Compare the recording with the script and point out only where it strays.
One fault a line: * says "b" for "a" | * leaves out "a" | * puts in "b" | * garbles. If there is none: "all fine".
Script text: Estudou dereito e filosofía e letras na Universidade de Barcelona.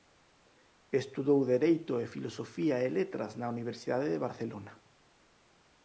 all fine